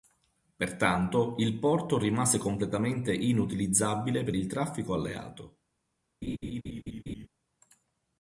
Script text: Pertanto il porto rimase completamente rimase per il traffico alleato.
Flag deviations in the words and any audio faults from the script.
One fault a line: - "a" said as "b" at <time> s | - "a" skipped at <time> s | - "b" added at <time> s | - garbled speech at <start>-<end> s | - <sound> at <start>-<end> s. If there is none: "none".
- "rimase" said as "inutilizzabile" at 3.1 s
- laugh at 6.2-7.3 s